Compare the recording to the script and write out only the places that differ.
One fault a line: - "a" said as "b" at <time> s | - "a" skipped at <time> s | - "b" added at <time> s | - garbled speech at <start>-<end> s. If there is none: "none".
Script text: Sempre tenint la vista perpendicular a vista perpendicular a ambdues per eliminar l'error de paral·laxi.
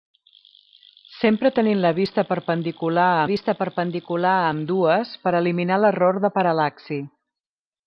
none